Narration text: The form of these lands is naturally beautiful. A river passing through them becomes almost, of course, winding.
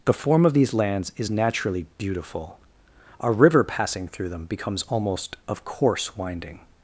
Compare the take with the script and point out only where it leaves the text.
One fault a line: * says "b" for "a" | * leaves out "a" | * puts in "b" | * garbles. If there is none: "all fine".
all fine